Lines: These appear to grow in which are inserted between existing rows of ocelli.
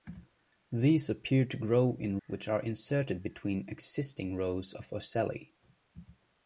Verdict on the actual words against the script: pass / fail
pass